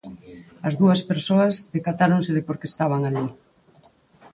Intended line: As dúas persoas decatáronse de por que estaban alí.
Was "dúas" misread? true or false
false